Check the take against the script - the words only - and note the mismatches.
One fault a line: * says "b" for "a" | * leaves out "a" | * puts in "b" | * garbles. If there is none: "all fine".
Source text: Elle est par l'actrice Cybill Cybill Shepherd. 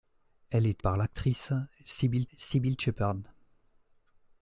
all fine